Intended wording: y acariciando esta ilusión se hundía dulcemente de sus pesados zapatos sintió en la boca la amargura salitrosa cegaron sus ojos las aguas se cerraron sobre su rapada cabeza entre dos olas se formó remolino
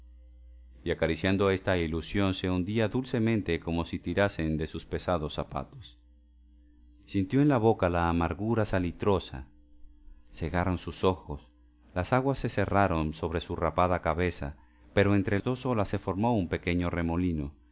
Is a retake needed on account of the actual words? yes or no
yes